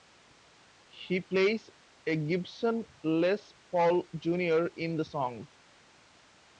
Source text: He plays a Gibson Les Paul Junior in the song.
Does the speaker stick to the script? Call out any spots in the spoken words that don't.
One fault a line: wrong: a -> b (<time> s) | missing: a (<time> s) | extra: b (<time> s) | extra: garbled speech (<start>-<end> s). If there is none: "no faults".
no faults